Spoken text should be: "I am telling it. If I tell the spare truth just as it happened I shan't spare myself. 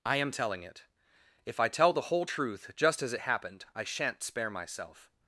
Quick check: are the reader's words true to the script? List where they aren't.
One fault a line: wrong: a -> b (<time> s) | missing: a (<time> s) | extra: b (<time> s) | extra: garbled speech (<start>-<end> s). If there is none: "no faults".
wrong: spare -> whole (2.0 s)